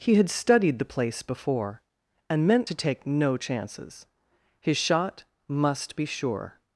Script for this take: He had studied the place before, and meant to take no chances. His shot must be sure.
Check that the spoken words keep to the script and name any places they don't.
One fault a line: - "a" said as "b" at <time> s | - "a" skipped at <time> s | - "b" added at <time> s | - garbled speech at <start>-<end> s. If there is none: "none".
none